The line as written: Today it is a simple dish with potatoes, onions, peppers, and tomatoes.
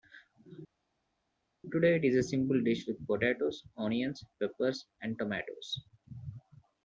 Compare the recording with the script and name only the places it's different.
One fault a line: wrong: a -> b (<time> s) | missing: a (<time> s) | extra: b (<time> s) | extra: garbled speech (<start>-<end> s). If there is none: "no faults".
no faults